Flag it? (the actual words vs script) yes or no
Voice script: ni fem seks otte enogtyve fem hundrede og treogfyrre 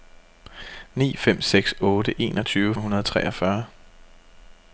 yes